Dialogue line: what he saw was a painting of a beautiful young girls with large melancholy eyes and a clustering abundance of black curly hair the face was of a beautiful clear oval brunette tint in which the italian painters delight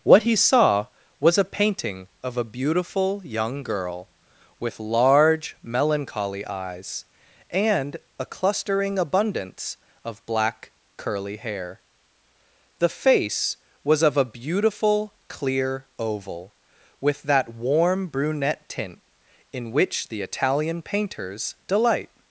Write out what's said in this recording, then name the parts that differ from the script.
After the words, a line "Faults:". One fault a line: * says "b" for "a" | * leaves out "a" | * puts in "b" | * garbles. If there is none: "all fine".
what he saw was a painting of a beautiful young girl with large melancholy eyes and a clustering abundance of black curly hair the face was of a beautiful clear oval with that warm brunette tint in which the italian painters delight
Faults:
* says "girl" for "girls"
* puts in "with that warm"